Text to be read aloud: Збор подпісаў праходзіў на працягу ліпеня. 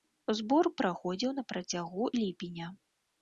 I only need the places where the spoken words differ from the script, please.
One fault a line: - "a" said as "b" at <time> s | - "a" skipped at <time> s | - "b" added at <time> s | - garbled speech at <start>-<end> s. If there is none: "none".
- "подпісаў" skipped at 0.7 s